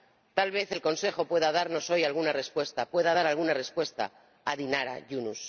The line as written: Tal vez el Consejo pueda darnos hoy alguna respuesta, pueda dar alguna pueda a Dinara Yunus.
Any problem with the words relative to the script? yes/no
yes